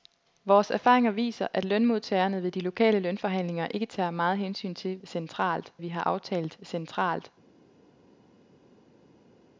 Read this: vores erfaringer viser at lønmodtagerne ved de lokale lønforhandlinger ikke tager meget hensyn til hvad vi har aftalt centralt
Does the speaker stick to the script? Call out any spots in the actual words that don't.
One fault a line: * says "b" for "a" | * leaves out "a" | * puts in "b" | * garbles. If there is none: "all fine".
* says "centralt" for "hvad"